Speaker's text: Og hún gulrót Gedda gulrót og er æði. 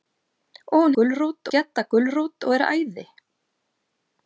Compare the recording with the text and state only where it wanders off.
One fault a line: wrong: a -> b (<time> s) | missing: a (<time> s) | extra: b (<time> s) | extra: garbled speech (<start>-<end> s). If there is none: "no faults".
no faults